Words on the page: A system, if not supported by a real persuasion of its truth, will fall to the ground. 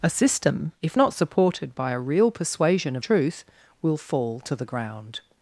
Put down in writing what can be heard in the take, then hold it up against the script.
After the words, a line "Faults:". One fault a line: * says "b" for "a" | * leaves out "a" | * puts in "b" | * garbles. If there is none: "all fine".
A system, if not supported by a real persuasion of truth, will fall to the ground.
Faults:
* leaves out "its"